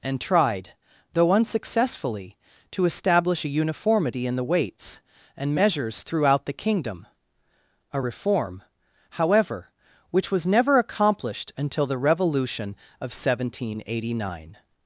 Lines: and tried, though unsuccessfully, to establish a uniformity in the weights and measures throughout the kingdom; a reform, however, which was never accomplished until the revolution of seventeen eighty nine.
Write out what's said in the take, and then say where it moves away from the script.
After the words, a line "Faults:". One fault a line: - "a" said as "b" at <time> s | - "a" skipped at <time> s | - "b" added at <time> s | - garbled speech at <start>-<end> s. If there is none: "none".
and tried, though unsuccessfully, to establish a uniformity in the weights and measures throughout the kingdom; a reform, however, which was never accomplished until the revolution of seventeen eighty nine.
Faults:
none